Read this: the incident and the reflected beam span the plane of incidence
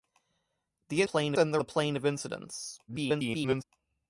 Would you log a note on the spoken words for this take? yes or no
yes